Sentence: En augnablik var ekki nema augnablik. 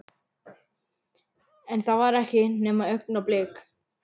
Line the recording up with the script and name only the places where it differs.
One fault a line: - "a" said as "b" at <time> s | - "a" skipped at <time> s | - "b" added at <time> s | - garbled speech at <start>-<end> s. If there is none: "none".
- "augnablik" said as "það" at 1.9 s